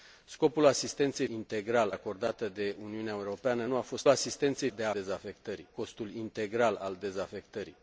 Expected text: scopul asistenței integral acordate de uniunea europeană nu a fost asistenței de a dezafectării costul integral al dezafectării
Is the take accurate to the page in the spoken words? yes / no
yes